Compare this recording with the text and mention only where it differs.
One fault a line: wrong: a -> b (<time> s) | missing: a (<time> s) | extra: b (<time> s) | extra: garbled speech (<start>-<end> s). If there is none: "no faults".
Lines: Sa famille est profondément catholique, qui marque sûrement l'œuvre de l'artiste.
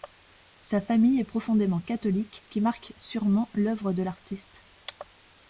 no faults